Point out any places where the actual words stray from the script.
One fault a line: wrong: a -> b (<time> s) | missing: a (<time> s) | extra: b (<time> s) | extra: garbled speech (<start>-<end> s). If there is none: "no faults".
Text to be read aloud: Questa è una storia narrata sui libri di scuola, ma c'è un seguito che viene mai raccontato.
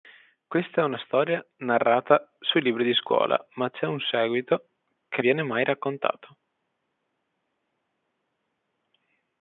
no faults